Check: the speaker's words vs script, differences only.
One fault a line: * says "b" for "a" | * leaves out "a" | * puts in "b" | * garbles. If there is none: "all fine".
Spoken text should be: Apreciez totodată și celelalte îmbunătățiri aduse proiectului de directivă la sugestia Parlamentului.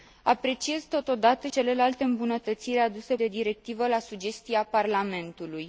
* leaves out "și"
* leaves out "proiectului"